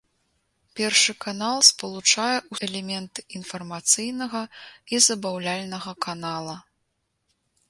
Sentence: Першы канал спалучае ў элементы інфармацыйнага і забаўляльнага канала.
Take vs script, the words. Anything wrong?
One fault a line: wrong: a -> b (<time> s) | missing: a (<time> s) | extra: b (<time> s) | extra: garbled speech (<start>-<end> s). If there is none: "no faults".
no faults